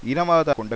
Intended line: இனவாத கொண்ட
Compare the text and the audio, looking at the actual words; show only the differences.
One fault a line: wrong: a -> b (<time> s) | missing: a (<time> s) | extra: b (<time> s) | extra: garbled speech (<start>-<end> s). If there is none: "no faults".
no faults